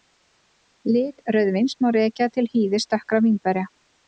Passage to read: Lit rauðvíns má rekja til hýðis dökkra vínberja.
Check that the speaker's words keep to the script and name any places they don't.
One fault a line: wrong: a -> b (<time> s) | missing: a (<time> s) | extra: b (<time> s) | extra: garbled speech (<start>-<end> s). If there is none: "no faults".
no faults